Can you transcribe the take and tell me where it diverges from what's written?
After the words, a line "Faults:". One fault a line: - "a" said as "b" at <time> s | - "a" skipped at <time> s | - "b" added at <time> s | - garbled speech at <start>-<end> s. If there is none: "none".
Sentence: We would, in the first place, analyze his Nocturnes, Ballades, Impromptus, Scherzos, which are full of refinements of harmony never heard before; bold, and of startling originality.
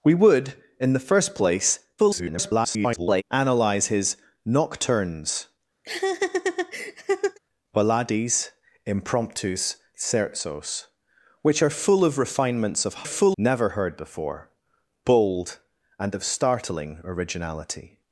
We would, in the first place, [garbled] analyze his Nocturnes, Ballades, Impromptus, Scherzos, which are full of refinements of full never heard before; bold, and of startling originality.
Faults:
- garbled speech at 2.0-3.2 s
- "harmony" said as "full" at 13.0 s